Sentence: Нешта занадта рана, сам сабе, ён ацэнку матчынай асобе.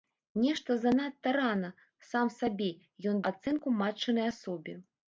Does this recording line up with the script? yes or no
yes